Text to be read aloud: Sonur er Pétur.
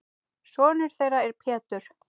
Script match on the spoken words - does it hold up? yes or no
no